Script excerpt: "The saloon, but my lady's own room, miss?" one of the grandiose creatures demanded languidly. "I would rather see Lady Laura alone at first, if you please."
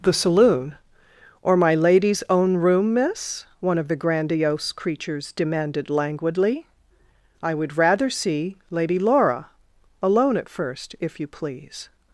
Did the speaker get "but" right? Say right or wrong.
wrong